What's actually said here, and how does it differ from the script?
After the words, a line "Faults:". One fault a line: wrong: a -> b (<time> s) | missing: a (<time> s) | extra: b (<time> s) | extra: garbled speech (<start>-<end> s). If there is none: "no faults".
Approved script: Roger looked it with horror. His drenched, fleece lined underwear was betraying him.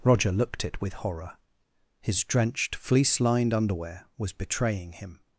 Roger looked it with horror. His drenched, fleece lined underwear was betraying him.
Faults:
no faults